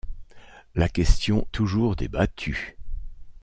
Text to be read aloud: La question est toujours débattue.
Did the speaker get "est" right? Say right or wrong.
wrong